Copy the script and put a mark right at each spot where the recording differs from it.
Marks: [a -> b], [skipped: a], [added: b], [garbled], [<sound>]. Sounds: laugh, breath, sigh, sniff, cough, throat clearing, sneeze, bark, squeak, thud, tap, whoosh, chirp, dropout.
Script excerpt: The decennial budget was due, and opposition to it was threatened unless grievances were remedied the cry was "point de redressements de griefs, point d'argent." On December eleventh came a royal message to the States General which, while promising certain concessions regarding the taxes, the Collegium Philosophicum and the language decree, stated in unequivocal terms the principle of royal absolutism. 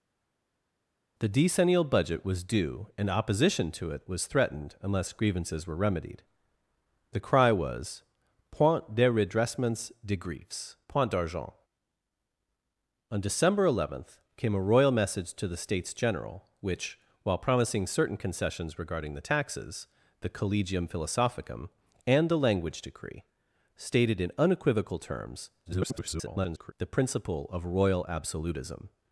The decennial budget was due, and opposition to it was threatened unless grievances were remedied the cry was "point de redressements de griefs, point d'argent." On December eleventh came a royal message to the States General which, while promising certain concessions regarding the taxes, the Collegium Philosophicum and the language decree, stated in unequivocal terms [garbled] the principle of royal absolutism.